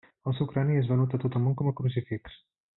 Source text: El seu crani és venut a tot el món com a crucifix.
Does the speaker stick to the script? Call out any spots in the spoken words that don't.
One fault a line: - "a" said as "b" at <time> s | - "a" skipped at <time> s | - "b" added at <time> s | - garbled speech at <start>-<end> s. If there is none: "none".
none